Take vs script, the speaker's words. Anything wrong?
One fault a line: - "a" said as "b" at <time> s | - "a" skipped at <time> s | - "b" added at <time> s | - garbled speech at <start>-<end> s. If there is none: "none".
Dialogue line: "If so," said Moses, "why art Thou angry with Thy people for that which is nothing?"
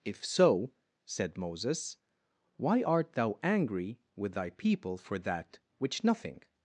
- "is" skipped at 6.0 s